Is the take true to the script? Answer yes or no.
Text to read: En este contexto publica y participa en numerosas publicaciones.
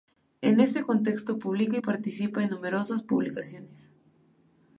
yes